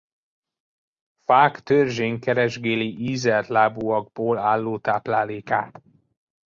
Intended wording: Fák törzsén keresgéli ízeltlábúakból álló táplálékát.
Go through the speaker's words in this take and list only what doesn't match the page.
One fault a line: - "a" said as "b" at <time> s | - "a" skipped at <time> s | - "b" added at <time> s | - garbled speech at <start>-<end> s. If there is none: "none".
none